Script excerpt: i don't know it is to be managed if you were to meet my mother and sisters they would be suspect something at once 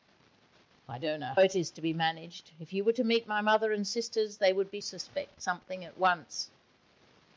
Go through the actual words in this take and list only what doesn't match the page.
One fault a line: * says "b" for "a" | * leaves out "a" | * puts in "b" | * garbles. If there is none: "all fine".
all fine